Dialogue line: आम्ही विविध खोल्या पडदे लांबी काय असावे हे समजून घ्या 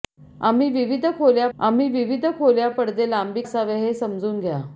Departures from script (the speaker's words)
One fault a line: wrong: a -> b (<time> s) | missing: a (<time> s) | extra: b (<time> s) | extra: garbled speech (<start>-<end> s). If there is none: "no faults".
extra: आम्ही विविध खोल्या (1.6 s)
missing: काय (3.4 s)